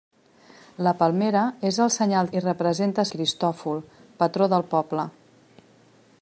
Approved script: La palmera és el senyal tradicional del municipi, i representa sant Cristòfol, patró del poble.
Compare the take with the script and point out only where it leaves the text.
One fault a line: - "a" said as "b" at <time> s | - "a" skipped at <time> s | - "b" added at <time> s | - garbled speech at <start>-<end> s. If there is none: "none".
- "tradicional del municipi" skipped at 2.3 s
- "sant" skipped at 3.1 s